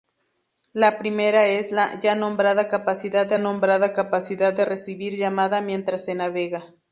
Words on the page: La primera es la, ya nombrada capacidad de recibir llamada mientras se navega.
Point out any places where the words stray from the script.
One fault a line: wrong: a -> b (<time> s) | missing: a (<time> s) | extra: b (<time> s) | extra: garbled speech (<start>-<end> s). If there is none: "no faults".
extra: nombrada capacidad de (3.4 s)